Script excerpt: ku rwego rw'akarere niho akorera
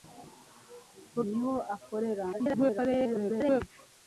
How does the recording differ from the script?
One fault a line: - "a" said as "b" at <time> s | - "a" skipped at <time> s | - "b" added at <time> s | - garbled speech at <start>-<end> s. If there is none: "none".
- "rwego rw'akarere" skipped at 1.2 s
- garbled speech at 2.3-3.6 s